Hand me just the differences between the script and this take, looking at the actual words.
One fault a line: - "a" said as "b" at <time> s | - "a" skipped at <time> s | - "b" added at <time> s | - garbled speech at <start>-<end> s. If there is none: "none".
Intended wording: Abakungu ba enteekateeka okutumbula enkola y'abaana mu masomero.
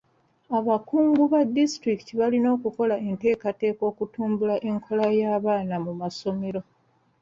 - "disitulikiti balina okukola" added at 1.6 s